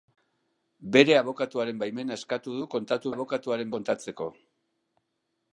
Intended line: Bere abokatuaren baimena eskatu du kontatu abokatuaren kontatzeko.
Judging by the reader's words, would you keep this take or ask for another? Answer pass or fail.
pass